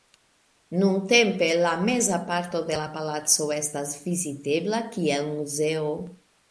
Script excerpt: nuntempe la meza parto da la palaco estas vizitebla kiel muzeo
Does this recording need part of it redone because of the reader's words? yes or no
yes